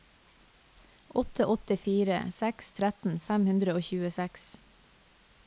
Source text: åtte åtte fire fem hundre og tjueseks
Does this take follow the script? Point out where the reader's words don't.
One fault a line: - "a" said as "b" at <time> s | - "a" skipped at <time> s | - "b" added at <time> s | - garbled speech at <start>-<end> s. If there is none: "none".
- "seks tretten" added at 2.4 s